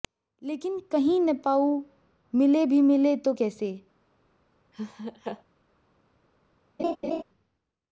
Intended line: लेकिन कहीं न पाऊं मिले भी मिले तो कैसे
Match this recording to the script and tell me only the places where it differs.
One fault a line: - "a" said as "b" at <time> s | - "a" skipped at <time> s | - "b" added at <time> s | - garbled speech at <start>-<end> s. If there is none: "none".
none